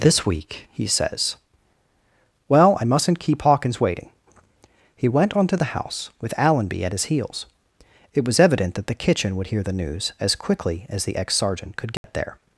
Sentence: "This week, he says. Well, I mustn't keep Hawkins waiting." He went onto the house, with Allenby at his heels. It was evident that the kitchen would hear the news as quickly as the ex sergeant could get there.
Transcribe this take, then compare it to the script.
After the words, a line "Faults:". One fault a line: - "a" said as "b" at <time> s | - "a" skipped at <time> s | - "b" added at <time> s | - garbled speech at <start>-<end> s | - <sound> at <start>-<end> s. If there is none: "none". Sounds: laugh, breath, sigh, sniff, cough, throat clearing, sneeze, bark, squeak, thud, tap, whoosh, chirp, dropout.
"This week, he says. Well, I mustn't keep Hawkins waiting." He went onto the house, with Allenby at his heels. It was evident that the kitchen would hear the news as quickly as the ex sergeant could get there.
Faults:
- dropout at 12.0-12.0 s